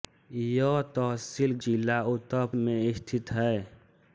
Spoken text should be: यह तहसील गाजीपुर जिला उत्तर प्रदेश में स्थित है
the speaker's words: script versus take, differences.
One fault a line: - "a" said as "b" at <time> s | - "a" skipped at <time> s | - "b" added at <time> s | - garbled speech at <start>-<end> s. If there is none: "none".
- "गाजीपुर" skipped at 1.5 s
- "प्रदेश" skipped at 2.4 s